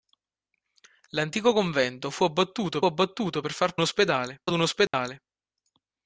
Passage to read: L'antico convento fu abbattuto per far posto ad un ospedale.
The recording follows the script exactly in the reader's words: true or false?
false